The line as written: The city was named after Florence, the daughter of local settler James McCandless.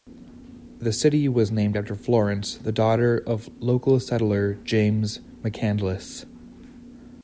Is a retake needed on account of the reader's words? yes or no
no